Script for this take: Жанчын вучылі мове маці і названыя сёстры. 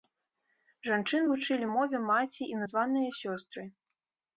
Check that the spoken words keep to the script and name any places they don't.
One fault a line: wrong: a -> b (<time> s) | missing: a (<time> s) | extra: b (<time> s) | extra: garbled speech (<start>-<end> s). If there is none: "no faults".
no faults